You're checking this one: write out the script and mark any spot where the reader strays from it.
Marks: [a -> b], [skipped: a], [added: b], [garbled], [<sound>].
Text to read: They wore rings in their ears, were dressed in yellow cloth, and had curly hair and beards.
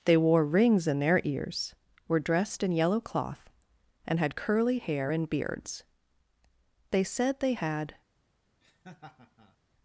They wore rings in their ears, were dressed in yellow cloth, and had curly hair and beards. [added: They said they had] [laugh]